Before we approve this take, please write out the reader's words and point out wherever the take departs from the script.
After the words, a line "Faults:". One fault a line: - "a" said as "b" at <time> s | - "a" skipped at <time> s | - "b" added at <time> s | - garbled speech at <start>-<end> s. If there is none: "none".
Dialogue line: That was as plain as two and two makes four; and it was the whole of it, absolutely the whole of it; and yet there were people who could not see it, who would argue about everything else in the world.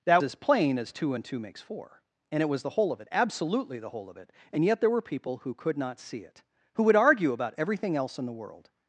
That as plain as two and two makes four; and it was the whole of it, absolutely the whole of it; and yet there were people who could not see it, who would argue about everything else in the world.
Faults:
- "was" skipped at 0.2 s